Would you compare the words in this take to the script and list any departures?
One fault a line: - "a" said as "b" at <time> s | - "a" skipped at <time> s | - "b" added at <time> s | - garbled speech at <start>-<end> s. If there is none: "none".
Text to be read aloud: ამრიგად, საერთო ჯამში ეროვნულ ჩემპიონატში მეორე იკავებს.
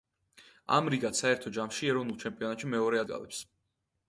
none